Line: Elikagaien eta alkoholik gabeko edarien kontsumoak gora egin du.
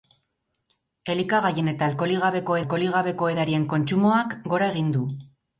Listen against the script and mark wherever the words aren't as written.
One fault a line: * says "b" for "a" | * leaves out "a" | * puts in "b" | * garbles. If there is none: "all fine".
* puts in "alkoholik gabeko"